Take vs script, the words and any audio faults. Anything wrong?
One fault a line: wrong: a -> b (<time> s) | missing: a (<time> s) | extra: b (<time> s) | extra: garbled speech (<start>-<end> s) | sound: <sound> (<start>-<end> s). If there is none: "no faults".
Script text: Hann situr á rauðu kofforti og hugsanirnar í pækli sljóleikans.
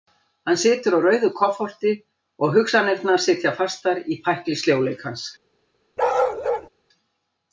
extra: sitja fastar (3.3 s)
sound: bark (6.0-6.7 s)